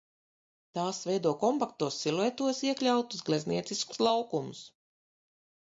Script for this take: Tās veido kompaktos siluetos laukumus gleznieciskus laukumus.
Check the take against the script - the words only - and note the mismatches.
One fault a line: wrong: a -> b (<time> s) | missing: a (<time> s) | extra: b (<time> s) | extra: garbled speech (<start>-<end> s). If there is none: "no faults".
wrong: laukumus -> iekļautus (2.7 s)